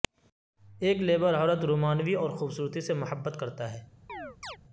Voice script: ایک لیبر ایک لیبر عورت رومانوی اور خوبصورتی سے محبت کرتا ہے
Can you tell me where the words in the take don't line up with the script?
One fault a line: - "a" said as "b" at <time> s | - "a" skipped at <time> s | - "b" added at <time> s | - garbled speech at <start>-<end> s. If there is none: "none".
- "ایک لیبر" skipped at 1.3 s